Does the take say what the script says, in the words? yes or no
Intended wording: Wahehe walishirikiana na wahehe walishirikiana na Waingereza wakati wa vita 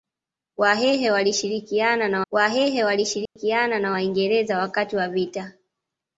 yes